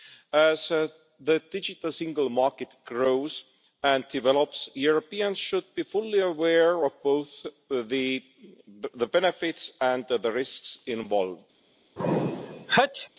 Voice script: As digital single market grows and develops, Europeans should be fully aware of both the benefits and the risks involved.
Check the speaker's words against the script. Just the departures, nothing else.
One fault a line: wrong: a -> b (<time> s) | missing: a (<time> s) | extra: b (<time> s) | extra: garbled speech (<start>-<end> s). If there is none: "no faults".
extra: the (0.7 s)